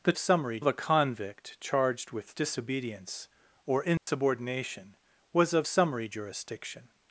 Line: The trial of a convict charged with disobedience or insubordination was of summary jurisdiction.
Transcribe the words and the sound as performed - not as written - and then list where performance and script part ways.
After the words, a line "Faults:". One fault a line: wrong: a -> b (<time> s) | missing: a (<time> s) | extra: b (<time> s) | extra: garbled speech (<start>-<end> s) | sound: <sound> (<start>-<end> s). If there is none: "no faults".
The summary of a convict charged with disobedience or insubordination was of summary jurisdiction.
Faults:
wrong: trial -> summary (0.2 s)
sound: dropout (4.0-4.1 s)